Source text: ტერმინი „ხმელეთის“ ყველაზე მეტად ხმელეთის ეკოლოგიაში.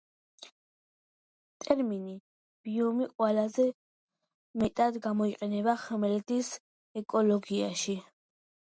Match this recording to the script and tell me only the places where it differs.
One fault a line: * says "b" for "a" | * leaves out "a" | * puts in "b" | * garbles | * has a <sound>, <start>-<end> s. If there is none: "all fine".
* says "ბიომი" for "ხმელეთის"
* puts in "გამოიყენება"